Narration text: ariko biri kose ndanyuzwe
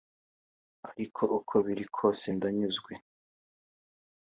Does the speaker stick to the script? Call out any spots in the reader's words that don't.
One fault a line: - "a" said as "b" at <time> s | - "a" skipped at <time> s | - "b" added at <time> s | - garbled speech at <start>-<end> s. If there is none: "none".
- "uko" added at 1.4 s